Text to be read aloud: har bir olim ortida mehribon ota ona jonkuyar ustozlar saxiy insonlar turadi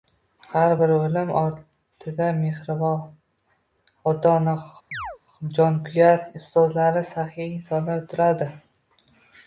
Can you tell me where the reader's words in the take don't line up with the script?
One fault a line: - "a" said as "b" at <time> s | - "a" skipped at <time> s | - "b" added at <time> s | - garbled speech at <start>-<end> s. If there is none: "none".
none